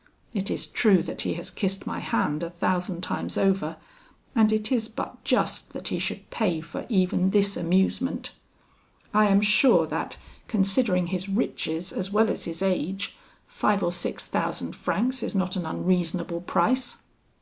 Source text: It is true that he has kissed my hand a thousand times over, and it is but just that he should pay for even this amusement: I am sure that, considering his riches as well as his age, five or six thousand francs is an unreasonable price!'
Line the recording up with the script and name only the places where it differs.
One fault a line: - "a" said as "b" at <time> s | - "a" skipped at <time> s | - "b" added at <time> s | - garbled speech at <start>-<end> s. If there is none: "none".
- "not" added at 15.3 s